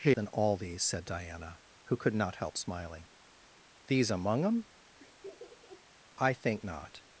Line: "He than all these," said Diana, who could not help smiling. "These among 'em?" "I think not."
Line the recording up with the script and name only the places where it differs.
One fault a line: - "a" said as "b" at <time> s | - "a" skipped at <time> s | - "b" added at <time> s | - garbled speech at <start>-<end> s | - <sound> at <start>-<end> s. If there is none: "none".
- laugh at 5.0-5.9 s